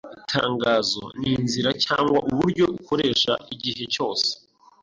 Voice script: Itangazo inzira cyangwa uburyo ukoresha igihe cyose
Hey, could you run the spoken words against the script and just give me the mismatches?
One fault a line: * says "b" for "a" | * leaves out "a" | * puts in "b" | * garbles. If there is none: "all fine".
* puts in "ni"